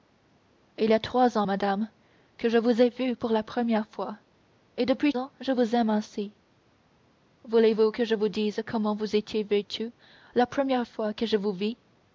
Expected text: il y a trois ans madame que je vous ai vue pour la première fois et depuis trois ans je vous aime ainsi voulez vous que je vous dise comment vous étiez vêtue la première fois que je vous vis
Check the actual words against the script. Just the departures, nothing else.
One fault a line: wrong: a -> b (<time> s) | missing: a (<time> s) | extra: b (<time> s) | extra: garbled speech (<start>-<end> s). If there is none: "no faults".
missing: trois (5.1 s)